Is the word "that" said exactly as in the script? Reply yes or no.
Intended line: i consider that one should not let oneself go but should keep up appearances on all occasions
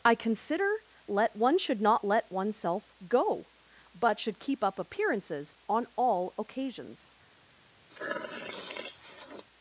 no